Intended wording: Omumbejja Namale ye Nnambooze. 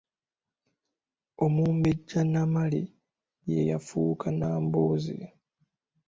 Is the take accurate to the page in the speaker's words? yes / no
no